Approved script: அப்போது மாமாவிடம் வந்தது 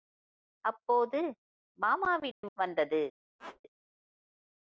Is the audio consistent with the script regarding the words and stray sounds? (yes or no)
no